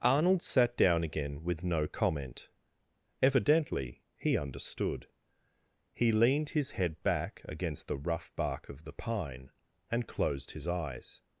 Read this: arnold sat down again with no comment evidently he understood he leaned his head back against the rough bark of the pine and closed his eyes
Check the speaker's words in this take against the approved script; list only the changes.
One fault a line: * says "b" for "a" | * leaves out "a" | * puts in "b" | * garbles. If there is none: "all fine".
all fine